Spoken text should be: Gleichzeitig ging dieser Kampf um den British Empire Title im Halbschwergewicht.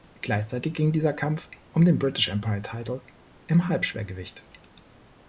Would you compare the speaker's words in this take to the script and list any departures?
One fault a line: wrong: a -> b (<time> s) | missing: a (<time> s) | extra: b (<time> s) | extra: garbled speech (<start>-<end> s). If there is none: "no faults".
no faults